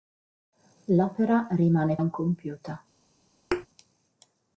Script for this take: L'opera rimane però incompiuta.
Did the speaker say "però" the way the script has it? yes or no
no